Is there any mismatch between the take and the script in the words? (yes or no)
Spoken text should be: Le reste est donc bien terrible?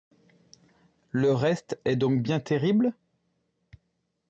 no